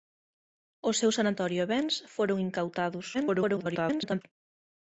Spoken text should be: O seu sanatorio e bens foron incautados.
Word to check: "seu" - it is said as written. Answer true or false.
true